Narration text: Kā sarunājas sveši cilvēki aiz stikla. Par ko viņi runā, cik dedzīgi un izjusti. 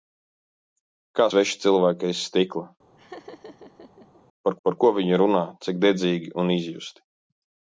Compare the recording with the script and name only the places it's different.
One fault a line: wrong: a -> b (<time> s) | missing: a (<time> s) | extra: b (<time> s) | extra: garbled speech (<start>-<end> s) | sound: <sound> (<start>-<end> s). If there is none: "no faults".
missing: sarunājas (1.3 s)
sound: laugh (3.0-4.2 s)
extra: par (4.7 s)